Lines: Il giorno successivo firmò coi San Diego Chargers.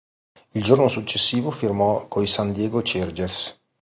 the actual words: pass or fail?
pass